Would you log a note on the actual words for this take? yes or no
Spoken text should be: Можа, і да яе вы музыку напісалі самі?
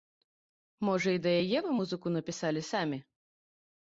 no